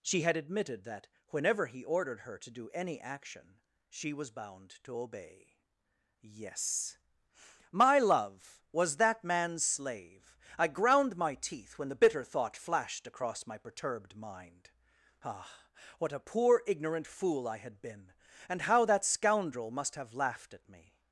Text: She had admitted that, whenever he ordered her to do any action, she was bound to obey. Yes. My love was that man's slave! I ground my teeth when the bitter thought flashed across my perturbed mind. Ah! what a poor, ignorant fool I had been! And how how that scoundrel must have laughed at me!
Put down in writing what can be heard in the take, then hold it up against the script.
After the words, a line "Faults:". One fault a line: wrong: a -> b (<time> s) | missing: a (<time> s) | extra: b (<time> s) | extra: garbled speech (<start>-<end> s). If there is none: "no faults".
She had admitted that, whenever he ordered her to do any action, she was bound to obey. Yes. My love was that man's slave! I ground my teeth when the bitter thought flashed across my perturbed mind. Ah! what a poor, ignorant fool I had been! And how that scoundrel must have laughed at me!
Faults:
missing: how (18.9 s)